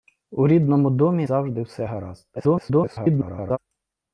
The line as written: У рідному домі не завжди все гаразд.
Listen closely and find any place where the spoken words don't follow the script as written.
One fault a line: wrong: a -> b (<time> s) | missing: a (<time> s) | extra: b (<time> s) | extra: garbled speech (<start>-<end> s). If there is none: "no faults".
missing: не (1.3 s)
extra: garbled speech (2.4-3.6 s)